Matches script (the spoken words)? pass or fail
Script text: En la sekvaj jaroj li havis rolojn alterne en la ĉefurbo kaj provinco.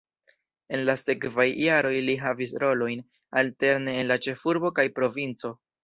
pass